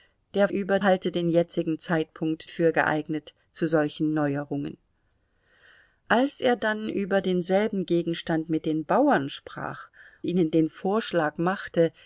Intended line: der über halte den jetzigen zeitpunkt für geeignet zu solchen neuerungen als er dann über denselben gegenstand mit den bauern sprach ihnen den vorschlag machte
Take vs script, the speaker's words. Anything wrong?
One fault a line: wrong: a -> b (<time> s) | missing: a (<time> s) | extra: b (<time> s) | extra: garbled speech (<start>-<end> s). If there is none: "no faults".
no faults